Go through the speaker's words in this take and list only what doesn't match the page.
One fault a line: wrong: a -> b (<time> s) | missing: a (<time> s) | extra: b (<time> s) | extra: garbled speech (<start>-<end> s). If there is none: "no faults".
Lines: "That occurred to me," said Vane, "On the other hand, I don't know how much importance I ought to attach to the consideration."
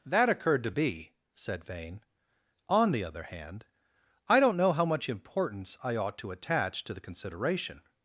wrong: me -> be (0.7 s)